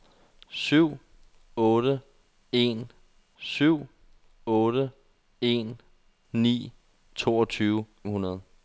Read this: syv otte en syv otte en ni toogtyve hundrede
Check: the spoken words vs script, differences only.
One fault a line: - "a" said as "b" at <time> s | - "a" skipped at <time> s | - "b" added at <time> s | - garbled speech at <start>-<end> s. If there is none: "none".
none